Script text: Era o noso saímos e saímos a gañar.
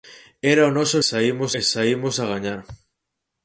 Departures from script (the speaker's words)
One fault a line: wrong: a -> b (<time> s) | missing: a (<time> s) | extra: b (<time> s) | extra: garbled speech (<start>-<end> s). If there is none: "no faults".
no faults